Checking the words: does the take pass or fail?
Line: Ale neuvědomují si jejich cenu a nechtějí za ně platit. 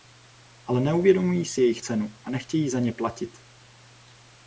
pass